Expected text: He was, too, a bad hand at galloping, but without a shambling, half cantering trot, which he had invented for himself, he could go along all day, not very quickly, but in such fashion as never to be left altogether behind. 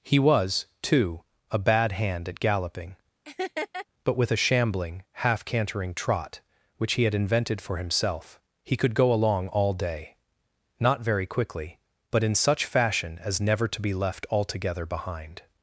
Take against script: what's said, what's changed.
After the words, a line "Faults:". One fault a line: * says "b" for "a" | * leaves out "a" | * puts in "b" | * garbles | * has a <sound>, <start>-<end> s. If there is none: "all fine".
He was, too, a bad hand at galloping, but with a shambling, half cantering trot, which he had invented for himself, he could go along all day, not very quickly, but in such fashion as never to be left altogether behind.
Faults:
* has a laugh, 3.2-3.9 s
* says "with" for "without"